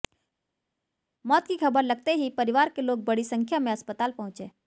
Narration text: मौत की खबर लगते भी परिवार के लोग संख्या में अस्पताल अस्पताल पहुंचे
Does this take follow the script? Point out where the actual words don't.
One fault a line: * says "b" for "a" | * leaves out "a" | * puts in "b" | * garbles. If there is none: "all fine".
* says "ही" for "भी"
* puts in "बड़ी"
* leaves out "अस्पताल"